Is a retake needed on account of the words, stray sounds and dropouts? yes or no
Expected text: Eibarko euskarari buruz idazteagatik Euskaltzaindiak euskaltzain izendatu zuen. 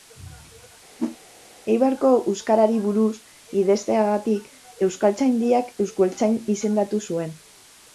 yes